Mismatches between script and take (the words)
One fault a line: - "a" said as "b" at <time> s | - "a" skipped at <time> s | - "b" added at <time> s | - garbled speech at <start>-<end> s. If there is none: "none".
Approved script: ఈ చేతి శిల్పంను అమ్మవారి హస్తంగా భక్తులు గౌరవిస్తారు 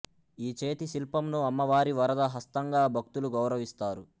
- "వరద" added at 2.0 s